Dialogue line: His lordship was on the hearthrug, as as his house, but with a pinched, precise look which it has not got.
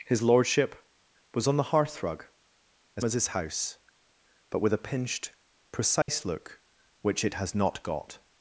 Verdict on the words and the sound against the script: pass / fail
fail